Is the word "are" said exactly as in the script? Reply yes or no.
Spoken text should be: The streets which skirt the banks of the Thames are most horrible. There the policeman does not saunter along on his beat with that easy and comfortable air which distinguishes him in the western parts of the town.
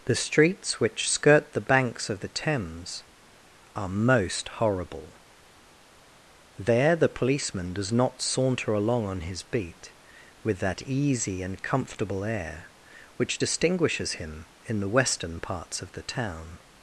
yes